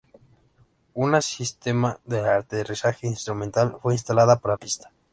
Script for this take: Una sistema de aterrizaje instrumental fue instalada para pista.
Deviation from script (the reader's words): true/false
false